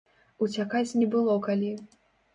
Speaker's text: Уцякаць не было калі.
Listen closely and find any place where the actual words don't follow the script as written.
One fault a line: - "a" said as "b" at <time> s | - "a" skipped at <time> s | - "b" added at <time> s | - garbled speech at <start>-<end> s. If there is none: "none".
none